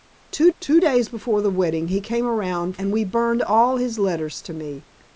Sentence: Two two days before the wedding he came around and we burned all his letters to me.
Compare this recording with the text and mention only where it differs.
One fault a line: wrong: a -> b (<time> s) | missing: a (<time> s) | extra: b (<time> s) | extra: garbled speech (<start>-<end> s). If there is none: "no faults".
no faults